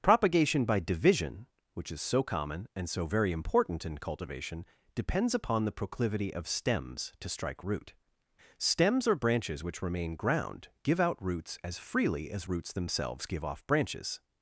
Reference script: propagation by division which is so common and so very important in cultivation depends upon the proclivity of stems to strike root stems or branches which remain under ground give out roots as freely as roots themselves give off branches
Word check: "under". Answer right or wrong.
wrong